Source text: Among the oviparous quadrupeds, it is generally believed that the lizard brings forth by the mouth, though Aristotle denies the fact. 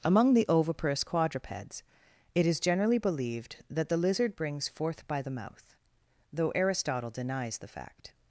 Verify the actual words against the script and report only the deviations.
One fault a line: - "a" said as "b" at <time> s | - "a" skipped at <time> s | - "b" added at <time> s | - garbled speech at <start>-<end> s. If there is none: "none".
none